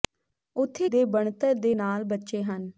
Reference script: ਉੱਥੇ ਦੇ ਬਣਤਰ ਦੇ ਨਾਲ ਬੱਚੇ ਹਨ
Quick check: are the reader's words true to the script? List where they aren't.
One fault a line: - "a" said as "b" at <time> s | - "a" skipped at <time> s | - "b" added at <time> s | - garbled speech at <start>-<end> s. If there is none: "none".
none